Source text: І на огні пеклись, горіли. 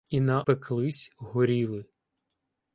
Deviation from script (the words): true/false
true